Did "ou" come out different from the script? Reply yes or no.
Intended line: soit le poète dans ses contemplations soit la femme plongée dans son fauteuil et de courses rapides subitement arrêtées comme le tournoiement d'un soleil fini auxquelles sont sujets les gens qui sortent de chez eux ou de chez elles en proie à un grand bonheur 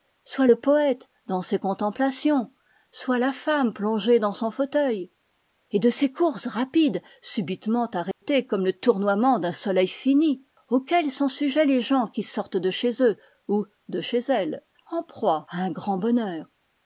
no